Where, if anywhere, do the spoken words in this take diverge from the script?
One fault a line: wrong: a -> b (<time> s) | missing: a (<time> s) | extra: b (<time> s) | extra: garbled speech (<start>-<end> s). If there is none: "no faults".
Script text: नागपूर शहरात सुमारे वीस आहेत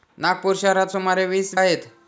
no faults